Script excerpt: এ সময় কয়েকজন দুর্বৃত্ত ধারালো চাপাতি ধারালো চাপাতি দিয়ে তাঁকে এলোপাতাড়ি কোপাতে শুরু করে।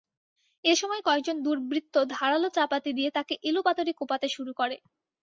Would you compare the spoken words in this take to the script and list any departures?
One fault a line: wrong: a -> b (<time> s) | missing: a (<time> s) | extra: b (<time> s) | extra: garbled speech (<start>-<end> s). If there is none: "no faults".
missing: ধারালো চাপাতি (2.9 s)